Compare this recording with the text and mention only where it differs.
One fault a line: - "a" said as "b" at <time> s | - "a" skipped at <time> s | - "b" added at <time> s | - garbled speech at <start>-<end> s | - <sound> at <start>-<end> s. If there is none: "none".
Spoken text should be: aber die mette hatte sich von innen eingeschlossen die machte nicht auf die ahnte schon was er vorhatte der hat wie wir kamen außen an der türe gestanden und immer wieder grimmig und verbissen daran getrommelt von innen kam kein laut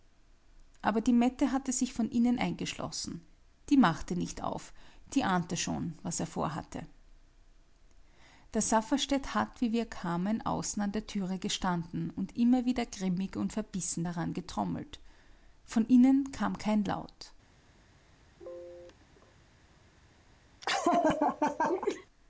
- "safferstätt" added at 8.6 s
- sneeze at 18.4-19.3 s
- laugh at 20.6-22.1 s